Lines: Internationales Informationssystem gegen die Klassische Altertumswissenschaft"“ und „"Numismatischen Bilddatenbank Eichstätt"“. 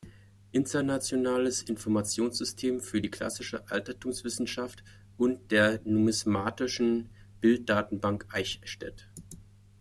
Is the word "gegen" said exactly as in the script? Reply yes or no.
no